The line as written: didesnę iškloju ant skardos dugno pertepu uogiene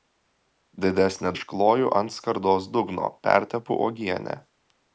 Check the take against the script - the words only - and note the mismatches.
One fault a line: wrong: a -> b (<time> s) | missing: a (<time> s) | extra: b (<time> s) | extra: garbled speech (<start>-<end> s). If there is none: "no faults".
no faults